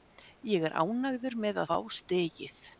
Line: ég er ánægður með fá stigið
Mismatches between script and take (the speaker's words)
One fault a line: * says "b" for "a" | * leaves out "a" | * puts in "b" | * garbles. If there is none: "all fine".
all fine